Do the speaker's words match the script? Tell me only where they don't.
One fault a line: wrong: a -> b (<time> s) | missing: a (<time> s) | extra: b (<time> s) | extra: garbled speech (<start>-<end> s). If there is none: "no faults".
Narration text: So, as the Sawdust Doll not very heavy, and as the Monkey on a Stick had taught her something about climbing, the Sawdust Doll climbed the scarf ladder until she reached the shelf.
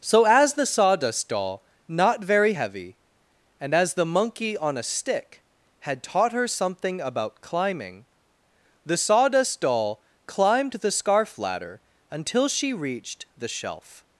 no faults